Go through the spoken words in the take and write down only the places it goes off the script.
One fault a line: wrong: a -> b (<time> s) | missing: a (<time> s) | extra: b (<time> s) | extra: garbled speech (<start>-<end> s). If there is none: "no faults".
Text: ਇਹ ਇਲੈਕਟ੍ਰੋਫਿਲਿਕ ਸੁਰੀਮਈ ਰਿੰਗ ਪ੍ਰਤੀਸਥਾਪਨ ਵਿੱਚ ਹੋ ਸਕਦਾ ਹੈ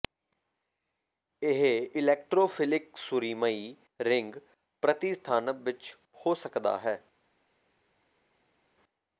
no faults